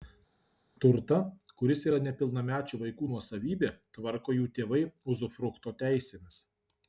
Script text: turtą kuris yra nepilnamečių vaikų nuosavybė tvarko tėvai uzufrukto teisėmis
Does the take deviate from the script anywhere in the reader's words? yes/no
yes